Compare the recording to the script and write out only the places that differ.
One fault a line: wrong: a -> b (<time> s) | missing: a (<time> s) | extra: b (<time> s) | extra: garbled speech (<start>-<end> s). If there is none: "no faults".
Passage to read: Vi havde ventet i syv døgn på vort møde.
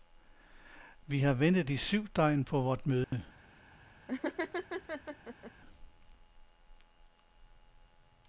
wrong: havde -> har (1.2 s)